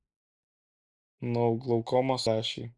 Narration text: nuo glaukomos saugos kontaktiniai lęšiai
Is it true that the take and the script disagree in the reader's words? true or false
true